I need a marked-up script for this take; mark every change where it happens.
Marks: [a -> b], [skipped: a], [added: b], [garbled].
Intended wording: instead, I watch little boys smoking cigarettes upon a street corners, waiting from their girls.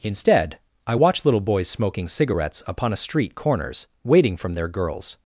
instead, I watch little boys smoking cigarettes upon a street corners, waiting from their girls.